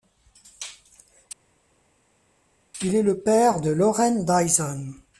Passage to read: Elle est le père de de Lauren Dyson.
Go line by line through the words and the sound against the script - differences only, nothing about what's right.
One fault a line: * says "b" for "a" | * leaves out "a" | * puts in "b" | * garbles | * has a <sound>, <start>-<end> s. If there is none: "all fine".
* says "Il" for "Elle"
* leaves out "de"